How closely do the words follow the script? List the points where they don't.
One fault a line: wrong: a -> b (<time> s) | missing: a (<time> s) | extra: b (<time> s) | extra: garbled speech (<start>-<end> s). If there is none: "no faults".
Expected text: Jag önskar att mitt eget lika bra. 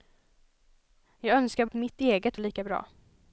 no faults